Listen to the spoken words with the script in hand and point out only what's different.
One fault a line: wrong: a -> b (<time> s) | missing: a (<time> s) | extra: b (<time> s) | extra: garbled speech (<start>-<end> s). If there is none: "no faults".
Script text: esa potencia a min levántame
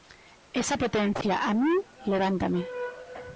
no faults